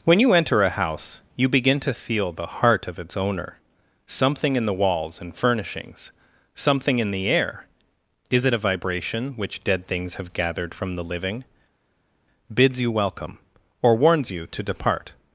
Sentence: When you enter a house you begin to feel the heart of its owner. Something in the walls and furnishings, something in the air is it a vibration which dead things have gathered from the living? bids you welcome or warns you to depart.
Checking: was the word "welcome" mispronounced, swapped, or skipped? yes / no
no